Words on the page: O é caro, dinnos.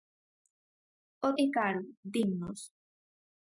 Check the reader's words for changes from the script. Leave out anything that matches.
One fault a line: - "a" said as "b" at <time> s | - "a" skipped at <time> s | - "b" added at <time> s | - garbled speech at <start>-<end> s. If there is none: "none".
none